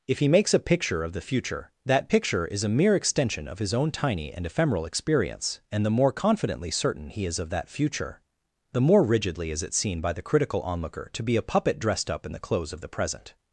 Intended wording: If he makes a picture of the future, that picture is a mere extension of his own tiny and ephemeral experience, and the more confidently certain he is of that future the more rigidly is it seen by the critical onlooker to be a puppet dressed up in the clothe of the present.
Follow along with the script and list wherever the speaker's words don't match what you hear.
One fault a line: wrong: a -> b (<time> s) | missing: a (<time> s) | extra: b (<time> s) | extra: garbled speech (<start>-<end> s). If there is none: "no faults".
wrong: clothe -> clothes (12.4 s)